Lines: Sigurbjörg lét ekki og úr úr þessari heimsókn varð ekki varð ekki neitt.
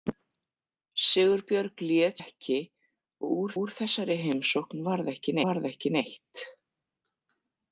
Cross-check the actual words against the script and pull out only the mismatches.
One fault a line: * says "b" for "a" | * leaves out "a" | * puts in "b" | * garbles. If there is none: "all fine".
all fine